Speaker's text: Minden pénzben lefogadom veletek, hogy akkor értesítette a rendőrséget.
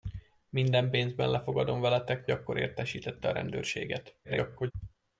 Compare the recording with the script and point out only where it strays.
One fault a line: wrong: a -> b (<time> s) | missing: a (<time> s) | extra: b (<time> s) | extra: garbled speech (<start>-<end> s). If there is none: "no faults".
missing: hogy (2.3 s)
extra: garbled speech (4.2-4.7 s)